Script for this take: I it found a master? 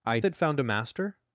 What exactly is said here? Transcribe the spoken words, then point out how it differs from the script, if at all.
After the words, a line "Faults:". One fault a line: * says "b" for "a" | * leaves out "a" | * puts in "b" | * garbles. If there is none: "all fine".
I it found a master?
Faults:
all fine